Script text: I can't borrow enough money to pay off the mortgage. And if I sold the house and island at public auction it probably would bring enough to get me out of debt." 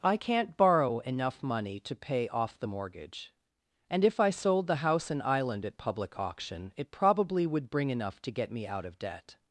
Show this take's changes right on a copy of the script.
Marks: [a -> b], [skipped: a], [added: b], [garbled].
I can't borrow enough money to pay off the mortgage. And if I sold the house and island at public auction it probably would bring enough to get me out of debt."